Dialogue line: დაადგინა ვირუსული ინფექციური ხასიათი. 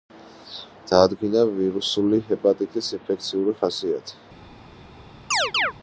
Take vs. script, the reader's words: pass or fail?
fail